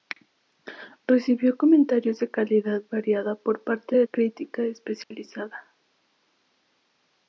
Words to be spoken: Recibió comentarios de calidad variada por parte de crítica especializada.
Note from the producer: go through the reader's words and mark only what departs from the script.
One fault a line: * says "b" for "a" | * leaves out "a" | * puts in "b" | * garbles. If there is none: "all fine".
all fine